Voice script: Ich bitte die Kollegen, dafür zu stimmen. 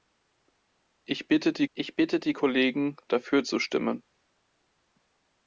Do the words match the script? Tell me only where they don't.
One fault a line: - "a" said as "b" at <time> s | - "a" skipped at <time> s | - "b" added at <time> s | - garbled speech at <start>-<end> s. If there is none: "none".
- "ich bitte die" added at 1.7 s